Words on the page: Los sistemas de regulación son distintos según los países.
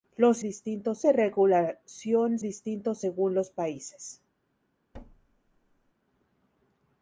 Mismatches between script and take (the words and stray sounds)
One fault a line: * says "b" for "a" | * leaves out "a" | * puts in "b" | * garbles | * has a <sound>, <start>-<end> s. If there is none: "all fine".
* says "distintos" for "sistemas"
* leaves out "son"
* has a thud, 4.9-5.9 s